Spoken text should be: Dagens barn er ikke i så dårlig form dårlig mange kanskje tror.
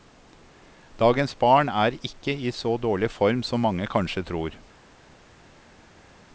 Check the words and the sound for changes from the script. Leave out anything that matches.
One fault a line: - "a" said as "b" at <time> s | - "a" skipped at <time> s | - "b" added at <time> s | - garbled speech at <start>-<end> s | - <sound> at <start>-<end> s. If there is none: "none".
- "dårlig" said as "som" at 3.5 s